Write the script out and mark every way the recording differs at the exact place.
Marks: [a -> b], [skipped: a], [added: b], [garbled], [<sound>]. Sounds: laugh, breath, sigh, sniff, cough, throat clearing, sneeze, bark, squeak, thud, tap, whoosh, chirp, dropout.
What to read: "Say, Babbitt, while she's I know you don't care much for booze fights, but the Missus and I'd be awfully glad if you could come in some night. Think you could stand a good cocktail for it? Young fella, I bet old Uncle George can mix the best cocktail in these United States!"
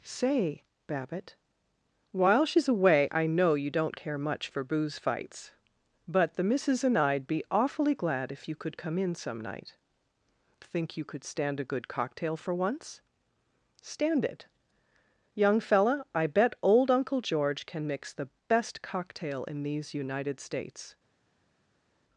"Say, Babbitt, while she's [added: away] I know you don't care much for booze fights, but the Missus and I'd be awfully glad if you could come in some night. Think you could stand a good cocktail for [added: once Stand] it? Young fella, I bet old Uncle George can mix the best cocktail in these United States!"